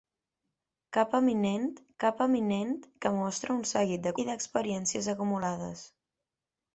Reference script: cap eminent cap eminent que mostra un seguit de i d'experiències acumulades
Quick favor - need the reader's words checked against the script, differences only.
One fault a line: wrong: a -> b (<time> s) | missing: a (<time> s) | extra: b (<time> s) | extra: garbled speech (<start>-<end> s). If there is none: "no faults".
no faults